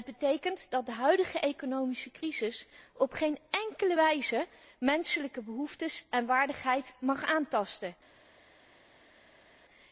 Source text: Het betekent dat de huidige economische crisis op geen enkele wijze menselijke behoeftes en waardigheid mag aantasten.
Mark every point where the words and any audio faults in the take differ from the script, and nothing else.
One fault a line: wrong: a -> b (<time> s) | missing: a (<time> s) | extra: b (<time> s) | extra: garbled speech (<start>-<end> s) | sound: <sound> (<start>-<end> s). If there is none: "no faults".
no faults